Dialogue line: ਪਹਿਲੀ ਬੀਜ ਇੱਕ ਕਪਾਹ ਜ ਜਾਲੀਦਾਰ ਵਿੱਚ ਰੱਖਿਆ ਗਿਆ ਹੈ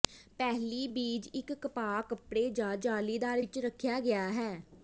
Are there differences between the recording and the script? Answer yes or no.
yes